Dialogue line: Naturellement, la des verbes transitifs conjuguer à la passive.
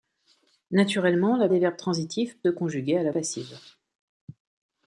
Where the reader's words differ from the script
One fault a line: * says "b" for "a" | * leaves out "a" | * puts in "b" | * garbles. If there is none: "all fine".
all fine